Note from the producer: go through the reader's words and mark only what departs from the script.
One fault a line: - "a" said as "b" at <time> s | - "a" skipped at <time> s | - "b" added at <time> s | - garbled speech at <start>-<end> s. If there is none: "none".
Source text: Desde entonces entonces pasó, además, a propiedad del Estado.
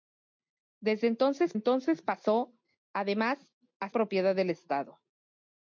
none